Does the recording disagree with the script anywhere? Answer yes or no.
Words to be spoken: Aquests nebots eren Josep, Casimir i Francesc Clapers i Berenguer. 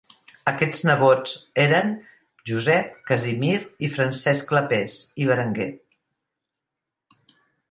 no